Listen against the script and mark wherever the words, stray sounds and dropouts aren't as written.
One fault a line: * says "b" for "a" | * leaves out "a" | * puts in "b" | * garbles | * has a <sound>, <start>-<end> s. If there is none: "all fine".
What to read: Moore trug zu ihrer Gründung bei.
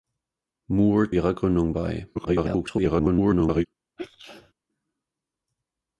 * leaves out "trug zu"
* garbles
* has a sneeze, 4.0-4.5 s